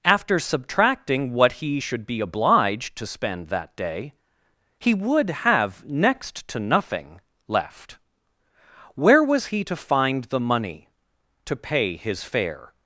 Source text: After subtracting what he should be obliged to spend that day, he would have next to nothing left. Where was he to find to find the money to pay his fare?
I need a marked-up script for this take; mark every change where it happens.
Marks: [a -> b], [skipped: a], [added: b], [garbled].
After subtracting what he should be obliged to spend that day, he would have next to nothing left. Where was he to find [skipped: to find] the money to pay his fare?